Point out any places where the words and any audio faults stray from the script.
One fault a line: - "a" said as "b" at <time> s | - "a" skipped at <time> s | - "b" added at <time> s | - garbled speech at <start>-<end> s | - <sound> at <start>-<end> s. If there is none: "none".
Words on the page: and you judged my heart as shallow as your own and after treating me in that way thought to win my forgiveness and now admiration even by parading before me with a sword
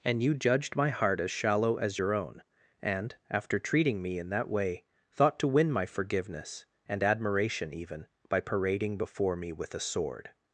- "now" skipped at 7.0 s